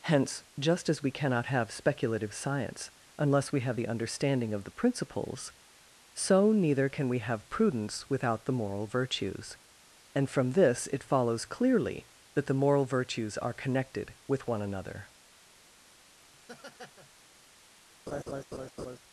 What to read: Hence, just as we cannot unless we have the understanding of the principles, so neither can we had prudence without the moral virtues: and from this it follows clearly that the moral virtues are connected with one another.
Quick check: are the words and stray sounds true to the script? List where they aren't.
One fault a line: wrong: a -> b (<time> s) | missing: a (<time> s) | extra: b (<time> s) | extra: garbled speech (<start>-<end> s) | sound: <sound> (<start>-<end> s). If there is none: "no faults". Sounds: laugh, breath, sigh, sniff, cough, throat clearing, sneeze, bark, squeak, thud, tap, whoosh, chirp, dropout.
extra: have speculative science (1.4 s)
wrong: had -> have (7.2 s)
sound: laugh (16.3-17.1 s)
sound: laugh (18.1-19.0 s)